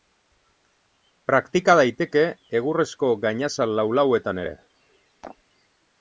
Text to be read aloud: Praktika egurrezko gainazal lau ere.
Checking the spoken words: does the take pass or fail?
fail